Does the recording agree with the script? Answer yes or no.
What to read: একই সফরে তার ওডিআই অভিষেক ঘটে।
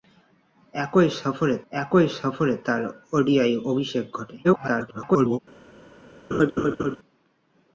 no